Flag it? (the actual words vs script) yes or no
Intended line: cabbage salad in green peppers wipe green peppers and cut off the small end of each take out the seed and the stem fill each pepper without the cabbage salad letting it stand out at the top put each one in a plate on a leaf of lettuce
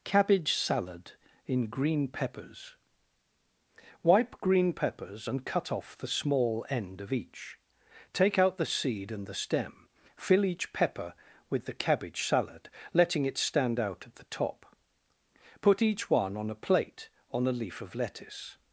yes